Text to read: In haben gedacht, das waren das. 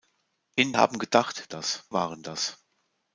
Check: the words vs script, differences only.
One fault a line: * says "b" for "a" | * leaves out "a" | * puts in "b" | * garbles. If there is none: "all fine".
all fine